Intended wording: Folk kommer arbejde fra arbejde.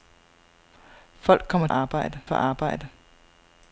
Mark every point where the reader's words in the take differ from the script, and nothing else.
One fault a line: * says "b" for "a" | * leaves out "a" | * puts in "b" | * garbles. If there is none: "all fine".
all fine